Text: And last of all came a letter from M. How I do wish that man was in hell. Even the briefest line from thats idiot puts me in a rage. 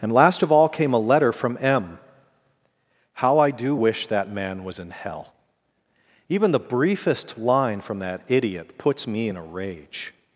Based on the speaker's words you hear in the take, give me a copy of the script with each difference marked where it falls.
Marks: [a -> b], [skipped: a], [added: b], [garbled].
And last of all came a letter from M. How I do wish that man was in hell. Even the briefest line from [thats -> that] idiot puts me in a rage.